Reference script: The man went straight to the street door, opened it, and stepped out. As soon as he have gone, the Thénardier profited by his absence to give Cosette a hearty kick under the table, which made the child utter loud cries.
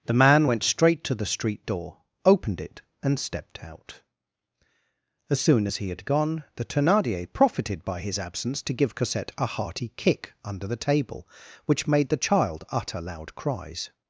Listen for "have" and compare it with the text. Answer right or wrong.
wrong